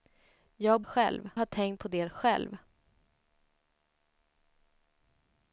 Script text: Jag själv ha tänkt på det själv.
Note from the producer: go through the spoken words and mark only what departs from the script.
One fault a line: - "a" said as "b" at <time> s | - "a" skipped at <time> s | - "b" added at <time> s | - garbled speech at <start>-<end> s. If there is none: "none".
none